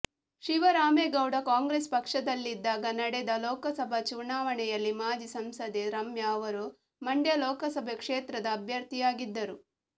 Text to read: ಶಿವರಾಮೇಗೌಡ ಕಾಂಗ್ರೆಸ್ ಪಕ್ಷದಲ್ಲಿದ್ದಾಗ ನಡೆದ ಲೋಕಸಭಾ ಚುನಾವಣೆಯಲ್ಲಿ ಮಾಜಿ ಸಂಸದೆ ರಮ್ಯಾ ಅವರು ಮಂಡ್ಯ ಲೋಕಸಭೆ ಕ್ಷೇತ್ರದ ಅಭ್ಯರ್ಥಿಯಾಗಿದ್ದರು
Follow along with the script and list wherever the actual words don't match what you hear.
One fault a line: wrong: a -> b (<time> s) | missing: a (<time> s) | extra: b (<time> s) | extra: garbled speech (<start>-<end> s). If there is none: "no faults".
no faults